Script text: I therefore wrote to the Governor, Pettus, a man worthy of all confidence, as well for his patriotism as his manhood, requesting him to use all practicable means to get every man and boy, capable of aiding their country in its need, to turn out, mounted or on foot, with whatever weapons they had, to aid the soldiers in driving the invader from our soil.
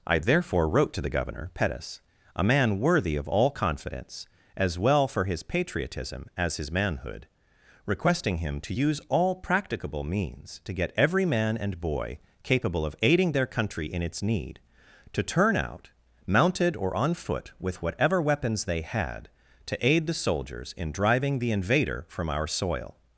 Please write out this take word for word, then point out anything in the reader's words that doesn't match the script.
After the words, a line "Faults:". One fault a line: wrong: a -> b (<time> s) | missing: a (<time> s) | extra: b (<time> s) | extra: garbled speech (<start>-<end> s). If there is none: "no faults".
I therefore wrote to the Governor, Pettus, a man worthy of all confidence, as well for his patriotism as his manhood, requesting him to use all practicable means to get every man and boy, capable of aiding their country in its need, to turn out, mounted or on foot, with whatever weapons they had, to aid the soldiers in driving the invader from our soil.
Faults:
no faults